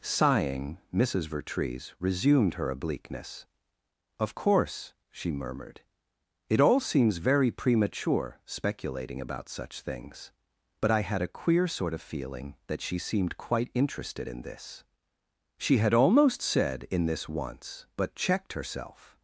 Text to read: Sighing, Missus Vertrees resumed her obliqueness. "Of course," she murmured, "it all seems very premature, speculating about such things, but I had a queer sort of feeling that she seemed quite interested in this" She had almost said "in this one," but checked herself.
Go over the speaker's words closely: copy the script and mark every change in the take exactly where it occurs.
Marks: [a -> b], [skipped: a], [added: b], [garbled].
Sighing, Missus Vertrees resumed her obliqueness. "Of course," she murmured, "it all seems very premature, speculating about such things, but I had a queer sort of feeling that she seemed quite interested in this" She had almost said "in this [one," -> once] but checked herself.